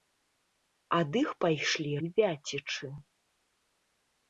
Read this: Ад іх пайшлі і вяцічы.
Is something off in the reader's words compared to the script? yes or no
no